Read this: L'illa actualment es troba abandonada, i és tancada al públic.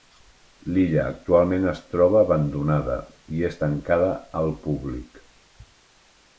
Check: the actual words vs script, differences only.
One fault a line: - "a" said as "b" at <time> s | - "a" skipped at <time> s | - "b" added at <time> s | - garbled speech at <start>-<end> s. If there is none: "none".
none